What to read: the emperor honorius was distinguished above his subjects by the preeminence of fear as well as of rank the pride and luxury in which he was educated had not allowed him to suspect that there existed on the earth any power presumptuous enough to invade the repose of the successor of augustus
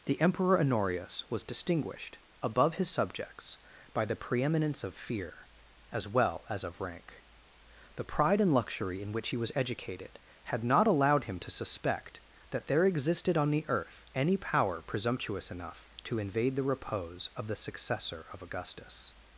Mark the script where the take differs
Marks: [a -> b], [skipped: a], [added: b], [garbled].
the emperor honorius was distinguished above his subjects by the preeminence of fear as well as of rank the pride and luxury in which he was educated had not allowed him to suspect that there existed on the earth any power presumptuous enough to invade the repose of the successor of augustus